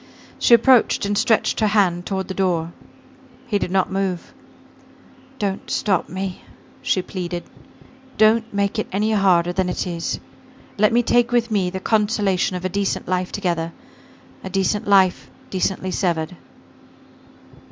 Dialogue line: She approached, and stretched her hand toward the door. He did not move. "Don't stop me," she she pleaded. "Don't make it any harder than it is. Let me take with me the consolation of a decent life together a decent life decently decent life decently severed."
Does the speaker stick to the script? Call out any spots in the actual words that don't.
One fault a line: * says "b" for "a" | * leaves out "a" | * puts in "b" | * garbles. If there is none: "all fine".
* leaves out "she"
* leaves out "decent life decently"